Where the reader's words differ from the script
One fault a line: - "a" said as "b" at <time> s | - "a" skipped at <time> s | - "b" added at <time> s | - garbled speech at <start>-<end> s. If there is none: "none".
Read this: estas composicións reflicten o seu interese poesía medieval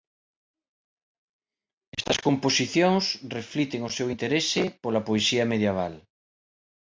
- "pola" added at 4.8 s